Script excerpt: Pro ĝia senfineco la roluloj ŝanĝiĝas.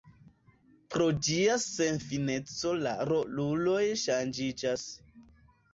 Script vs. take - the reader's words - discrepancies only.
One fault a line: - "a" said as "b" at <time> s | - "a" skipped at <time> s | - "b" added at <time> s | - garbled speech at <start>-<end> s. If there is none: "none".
none